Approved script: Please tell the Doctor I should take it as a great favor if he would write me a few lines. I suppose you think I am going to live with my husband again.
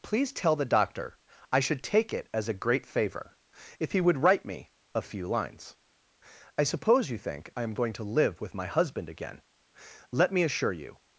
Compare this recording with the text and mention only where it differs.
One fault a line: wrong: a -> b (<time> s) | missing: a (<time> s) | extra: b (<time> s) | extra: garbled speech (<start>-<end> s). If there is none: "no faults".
extra: Let me assure you (10.1 s)